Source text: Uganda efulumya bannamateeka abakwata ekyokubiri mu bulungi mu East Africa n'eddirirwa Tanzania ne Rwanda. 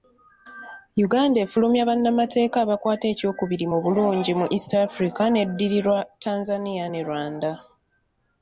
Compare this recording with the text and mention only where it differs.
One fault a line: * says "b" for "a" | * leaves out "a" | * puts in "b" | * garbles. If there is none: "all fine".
all fine